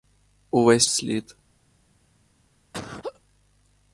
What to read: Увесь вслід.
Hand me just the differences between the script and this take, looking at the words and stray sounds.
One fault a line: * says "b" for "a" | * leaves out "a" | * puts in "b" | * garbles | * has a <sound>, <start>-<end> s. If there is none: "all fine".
* has a laugh, 2.7-3.2 s